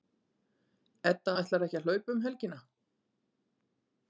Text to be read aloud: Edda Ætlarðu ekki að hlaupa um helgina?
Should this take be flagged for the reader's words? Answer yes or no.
no